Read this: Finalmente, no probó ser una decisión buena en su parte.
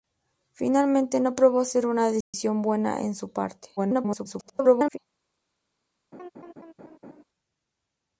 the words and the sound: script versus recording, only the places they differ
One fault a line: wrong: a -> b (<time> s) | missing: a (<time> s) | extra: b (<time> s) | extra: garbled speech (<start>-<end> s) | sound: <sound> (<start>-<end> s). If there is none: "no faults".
sound: dropout (2.2-2.3 s)
extra: garbled speech (3.8-5.0 s)
sound: laugh (6.1-7.2 s)